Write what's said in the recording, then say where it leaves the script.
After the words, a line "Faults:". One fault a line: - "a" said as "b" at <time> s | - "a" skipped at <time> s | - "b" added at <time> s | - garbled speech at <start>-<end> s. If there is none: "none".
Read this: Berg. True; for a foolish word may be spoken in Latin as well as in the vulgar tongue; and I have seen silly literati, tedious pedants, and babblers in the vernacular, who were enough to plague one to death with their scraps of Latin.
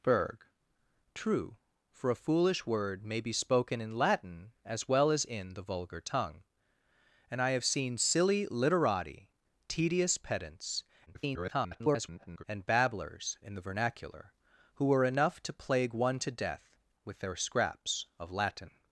Berg. True; for a foolish word may be spoken in Latin as well as in the vulgar tongue; and I have seen silly literati, tedious pedants, [garbled] and babblers in the vernacular, who were enough to plague one to death with their scraps of Latin.
Faults:
- garbled speech at 11.1-12.4 s